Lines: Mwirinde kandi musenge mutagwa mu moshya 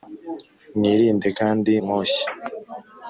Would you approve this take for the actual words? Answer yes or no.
no